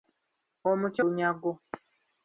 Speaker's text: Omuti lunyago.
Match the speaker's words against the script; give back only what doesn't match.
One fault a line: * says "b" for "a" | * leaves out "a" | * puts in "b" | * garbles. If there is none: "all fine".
all fine